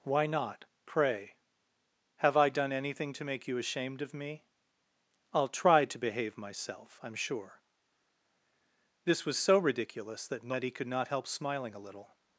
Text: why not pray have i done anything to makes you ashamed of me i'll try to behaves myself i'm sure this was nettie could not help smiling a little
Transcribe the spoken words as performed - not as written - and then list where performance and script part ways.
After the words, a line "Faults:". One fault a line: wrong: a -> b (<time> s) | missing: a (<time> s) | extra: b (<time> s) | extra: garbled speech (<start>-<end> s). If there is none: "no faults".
why not pray have i done anything to make you ashamed of me i'll try to behave myself i'm sure this was so ridiculous that nettie could not help smiling a little
Faults:
wrong: makes -> make (3.2 s)
wrong: behaves -> behave (6.0 s)
extra: so ridiculous that (9.4 s)